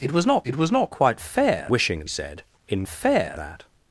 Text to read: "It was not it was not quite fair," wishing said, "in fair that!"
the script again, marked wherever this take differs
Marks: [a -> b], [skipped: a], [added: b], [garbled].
"It was not it was not quite fair," wishing said, "in fair that!"